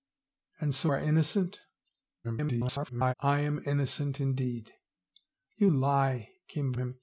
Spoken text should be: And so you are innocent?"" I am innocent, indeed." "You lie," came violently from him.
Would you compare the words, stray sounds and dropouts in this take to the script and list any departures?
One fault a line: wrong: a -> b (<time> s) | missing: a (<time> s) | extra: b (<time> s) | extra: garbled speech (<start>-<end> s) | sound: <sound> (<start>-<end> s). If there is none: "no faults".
missing: you (0.9 s)
extra: garbled speech (2.2-3.1 s)
missing: violently from (6.7 s)